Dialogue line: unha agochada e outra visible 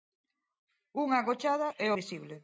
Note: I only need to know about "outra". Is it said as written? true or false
false